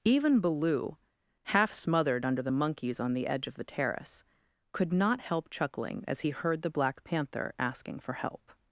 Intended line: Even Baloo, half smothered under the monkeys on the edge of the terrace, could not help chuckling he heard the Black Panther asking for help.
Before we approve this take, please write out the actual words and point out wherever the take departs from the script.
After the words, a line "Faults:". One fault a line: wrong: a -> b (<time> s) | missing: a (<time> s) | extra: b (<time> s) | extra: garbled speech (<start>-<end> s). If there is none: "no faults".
Even Baloo, half smothered under the monkeys on the edge of the terrace, could not help chuckling as he heard the Black Panther asking for help.
Faults:
extra: as (6.1 s)